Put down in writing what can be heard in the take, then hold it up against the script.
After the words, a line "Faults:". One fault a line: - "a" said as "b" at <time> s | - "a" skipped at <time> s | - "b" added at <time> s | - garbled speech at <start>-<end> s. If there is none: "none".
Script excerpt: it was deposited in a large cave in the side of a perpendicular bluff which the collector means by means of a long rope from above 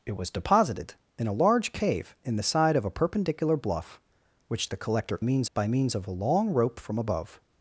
it was deposited in a large cave in the side of a perpendicular bluff which the collector means by means of a long rope from above
Faults:
none